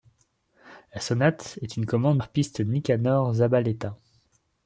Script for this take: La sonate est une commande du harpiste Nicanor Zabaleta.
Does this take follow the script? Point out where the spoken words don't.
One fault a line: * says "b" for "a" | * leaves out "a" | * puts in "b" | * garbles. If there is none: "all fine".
* leaves out "du"